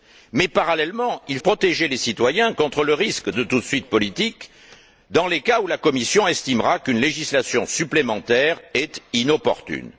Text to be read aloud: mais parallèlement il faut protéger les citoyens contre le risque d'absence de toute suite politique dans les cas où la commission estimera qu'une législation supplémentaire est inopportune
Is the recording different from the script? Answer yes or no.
yes